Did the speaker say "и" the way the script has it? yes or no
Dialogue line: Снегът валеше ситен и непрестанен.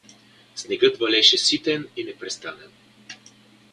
yes